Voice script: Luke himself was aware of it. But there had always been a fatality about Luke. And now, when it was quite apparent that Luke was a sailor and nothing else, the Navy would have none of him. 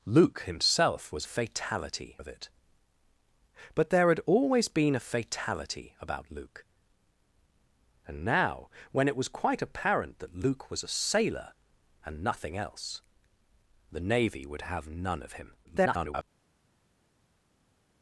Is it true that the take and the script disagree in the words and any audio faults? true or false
true